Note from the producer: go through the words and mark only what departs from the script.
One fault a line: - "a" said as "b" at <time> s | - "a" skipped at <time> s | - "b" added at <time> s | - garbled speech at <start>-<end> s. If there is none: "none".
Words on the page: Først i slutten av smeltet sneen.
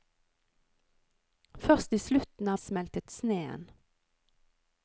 none